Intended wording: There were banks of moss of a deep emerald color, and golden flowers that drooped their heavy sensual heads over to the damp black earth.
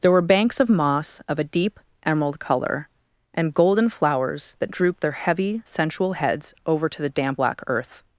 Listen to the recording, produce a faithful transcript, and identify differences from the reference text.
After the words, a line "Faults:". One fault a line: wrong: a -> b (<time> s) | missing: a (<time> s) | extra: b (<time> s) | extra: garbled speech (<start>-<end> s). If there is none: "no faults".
There were banks of moss of a deep emerald color, and golden flowers that drooped their heavy sensual heads over to the damp black earth.
Faults:
no faults